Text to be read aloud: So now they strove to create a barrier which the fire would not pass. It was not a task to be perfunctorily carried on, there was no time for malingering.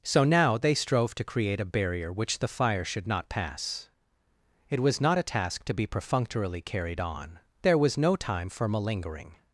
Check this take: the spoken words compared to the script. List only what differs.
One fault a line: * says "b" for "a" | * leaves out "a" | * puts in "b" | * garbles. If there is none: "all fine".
* says "should" for "would"